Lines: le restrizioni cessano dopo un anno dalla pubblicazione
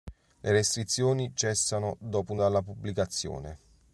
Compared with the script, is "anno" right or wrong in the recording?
wrong